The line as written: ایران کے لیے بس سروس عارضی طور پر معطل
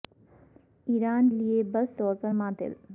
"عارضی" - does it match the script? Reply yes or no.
no